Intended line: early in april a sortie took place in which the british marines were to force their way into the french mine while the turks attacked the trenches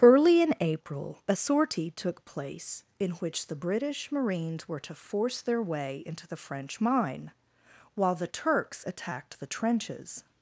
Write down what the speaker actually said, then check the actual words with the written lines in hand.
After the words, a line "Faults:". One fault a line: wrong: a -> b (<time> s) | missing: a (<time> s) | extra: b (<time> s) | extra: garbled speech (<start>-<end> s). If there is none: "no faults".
early in april a sortie took place in which the british marines were to force their way into the french mine while the turks attacked the trenches
Faults:
no faults